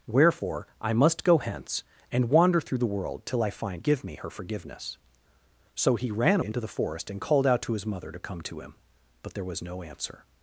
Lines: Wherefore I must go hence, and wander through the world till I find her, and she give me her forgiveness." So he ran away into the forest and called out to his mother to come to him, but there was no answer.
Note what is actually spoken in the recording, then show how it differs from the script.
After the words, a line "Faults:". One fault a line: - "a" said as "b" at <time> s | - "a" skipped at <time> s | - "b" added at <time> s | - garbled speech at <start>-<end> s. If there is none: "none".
Wherefore I must go hence, and wander through the world till I find give me her forgiveness." So he ran into the forest and called out to his mother to come to him, but there was no answer.
Faults:
- "her and she" skipped at 3.8 s
- "away" skipped at 6.4 s